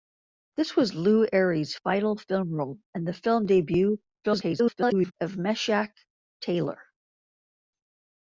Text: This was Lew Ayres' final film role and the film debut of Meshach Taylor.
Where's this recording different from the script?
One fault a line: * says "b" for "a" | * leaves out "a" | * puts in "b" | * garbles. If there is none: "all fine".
* garbles